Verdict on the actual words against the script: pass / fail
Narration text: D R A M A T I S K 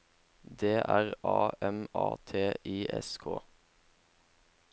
pass